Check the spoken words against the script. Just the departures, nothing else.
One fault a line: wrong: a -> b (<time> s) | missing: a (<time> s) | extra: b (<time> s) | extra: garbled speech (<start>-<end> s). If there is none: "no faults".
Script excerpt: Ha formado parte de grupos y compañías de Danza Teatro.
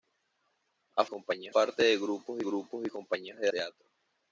wrong: formado -> compañías (1.1 s)
extra: grupos (2.4 s)
missing: Danza (3.5 s)